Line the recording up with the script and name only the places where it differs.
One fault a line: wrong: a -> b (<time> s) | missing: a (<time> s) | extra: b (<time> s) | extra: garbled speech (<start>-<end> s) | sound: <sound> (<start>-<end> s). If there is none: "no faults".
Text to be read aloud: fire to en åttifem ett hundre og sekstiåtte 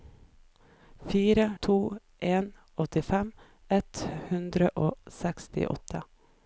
no faults